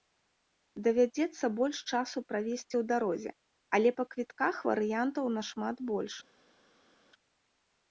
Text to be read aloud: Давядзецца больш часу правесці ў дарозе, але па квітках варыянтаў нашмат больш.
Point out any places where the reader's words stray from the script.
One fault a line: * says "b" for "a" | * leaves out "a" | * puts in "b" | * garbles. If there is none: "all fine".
all fine